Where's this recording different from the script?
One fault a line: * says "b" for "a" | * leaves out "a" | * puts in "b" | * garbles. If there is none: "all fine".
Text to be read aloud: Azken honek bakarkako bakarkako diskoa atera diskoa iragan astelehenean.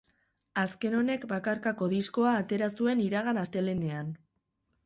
* leaves out "bakarkako"
* says "zuen" for "diskoa"